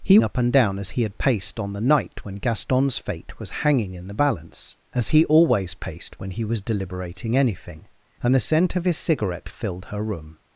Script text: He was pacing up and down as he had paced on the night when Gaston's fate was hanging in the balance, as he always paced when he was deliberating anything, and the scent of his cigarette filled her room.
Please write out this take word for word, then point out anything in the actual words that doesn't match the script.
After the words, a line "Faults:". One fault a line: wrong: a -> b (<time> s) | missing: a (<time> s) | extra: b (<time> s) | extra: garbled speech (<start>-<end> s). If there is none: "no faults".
He up and down as he had paced on the night when Gaston's fate was hanging in the balance, as he always paced when he was deliberating anything, and the scent of his cigarette filled her room.
Faults:
missing: was pacing (0.2 s)